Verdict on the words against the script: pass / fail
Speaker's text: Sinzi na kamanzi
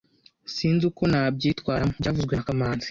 fail